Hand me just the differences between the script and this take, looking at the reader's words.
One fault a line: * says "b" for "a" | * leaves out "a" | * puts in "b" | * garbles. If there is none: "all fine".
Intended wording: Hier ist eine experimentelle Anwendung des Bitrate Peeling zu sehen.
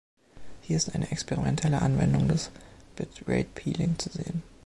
all fine